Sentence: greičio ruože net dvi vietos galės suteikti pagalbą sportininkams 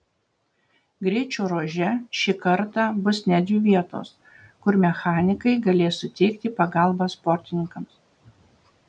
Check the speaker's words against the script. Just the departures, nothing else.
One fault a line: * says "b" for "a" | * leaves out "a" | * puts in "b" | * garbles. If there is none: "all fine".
* puts in "šį kartą bus"
* puts in "kur mechanikai"